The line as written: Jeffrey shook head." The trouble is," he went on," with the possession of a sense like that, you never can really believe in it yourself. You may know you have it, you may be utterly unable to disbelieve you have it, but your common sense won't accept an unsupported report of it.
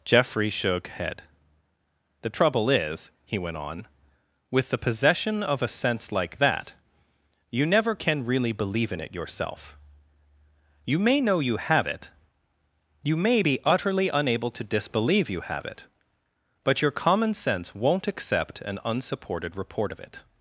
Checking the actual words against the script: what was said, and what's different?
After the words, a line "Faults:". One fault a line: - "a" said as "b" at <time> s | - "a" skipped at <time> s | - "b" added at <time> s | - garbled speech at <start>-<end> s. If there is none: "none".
Jeffrey shook head." The trouble is," he went on," with the possession of a sense like that, you never can really believe in it yourself. You may know you have it, you may be utterly unable to disbelieve you have it, but your common sense won't accept an unsupported report of it.
Faults:
none